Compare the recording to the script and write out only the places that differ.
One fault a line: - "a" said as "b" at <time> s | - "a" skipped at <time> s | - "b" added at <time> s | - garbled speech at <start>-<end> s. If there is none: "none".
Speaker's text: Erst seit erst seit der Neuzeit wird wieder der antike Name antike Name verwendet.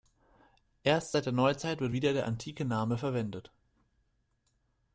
- "erst seit" skipped at 1.3 s
- "antike Name" skipped at 3.0 s